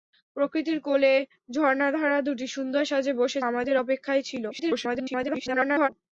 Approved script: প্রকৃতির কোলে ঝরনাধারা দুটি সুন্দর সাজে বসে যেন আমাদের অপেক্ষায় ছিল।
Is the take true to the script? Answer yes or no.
no